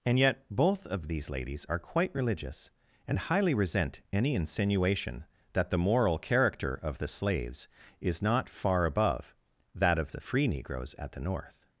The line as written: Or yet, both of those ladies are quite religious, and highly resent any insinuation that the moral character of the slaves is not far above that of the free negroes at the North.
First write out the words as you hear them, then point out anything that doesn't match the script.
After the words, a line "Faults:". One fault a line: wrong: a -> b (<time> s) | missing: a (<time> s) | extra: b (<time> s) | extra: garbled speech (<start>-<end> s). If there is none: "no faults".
And yet, both of these ladies are quite religious, and highly resent any insinuation that the moral character of the slaves is not far above that of the free negroes at the North.
Faults:
wrong: Or -> And (0.1 s)
wrong: those -> these (1.1 s)